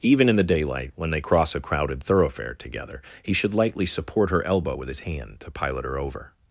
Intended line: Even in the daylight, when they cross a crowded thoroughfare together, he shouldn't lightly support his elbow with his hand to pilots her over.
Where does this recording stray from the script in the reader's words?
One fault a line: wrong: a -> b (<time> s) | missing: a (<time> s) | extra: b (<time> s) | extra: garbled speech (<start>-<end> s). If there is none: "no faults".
wrong: shouldn't -> should (3.3 s)
wrong: his -> her (4.3 s)
wrong: pilots -> pilot (5.5 s)